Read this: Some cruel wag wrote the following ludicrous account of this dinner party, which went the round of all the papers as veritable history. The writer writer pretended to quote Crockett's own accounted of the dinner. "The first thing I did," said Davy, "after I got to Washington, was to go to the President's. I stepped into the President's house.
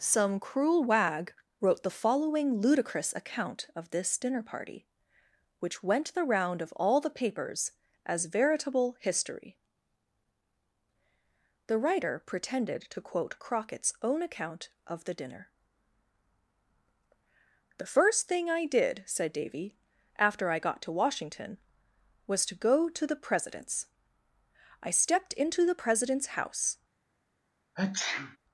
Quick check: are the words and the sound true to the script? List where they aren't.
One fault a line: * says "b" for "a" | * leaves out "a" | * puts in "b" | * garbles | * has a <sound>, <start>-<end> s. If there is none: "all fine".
* leaves out "writer"
* says "account" for "accounted"
* has a sneeze, 27.7-28.4 s